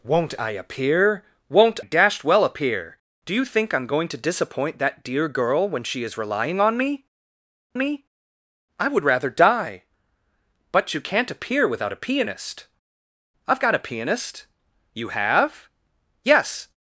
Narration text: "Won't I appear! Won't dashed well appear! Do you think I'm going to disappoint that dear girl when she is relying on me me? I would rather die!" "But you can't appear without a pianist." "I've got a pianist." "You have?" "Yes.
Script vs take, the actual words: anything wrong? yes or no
no